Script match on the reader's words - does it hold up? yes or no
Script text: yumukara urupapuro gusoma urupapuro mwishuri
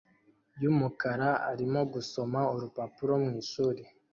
no